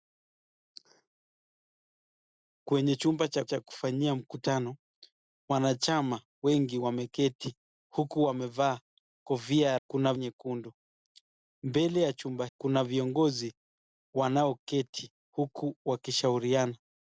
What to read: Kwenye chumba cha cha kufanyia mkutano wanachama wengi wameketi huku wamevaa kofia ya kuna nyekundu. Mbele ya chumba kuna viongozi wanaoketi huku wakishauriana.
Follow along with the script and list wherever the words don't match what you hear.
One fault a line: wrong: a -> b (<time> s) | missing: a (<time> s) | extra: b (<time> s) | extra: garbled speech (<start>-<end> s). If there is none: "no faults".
no faults